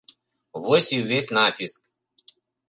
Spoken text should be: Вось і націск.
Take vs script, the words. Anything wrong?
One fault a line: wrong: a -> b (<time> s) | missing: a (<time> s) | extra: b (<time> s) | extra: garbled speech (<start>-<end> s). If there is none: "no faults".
extra: ўвесь (1.0 s)